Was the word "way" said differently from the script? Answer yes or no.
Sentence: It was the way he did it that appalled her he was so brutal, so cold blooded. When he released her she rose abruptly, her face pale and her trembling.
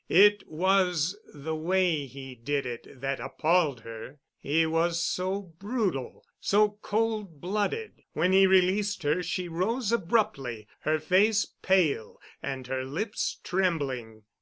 no